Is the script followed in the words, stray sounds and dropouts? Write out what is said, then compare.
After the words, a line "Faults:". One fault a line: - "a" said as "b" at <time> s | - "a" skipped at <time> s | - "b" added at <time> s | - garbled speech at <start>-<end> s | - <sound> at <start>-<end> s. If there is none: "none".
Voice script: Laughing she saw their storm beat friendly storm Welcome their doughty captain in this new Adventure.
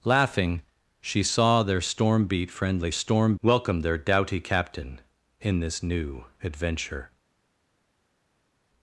Laughing she saw their storm beat friendly storm Welcome their doughty captain in this new Adventure.
Faults:
none